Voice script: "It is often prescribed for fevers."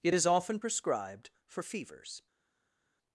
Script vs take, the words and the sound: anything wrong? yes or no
no